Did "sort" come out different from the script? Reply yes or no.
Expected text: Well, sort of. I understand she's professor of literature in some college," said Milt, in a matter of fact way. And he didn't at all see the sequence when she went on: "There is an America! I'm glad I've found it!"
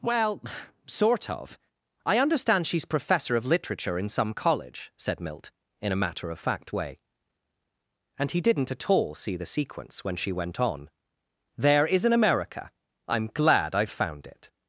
no